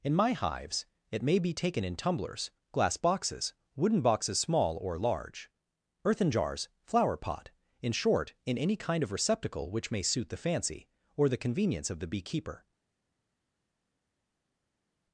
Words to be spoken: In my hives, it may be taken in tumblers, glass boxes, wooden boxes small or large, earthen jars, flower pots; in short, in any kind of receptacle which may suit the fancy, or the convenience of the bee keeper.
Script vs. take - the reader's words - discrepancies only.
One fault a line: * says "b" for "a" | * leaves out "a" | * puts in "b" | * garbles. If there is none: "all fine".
* says "pot" for "pots"